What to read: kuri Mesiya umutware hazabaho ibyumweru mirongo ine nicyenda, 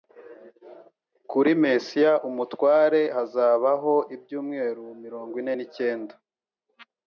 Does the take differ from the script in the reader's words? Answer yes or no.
no